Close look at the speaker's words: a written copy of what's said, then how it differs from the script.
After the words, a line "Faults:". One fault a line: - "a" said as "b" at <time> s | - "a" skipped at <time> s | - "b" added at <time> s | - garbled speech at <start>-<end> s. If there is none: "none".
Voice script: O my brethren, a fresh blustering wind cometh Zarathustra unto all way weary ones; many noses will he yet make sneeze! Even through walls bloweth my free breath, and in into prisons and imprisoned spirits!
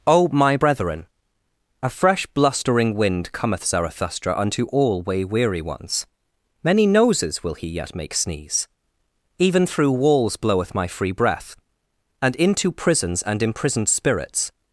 O my brethren, a fresh blustering wind cometh Zarathustra unto all way weary ones; many noses will he yet make sneeze! Even through walls bloweth my free breath, and into prisons and imprisoned spirits!
Faults:
- "in" skipped at 12.3 s